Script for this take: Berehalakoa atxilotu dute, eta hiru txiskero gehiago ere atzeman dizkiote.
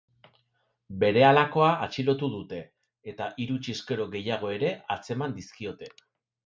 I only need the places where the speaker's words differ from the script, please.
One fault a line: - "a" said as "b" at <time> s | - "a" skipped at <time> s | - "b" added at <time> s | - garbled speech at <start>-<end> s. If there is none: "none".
none